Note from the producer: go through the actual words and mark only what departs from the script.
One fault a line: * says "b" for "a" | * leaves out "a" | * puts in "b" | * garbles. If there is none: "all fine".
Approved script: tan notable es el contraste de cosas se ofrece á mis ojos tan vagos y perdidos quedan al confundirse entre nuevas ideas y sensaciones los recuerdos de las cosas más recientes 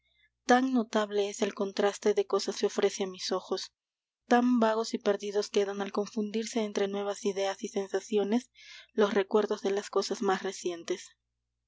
all fine